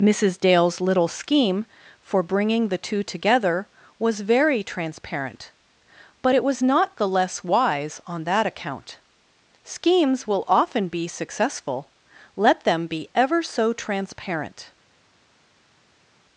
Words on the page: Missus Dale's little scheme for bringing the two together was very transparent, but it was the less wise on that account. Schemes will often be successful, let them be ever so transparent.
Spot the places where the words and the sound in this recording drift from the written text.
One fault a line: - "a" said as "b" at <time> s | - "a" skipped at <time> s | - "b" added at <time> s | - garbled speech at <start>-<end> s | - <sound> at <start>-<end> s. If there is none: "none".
- "not" added at 6.6 s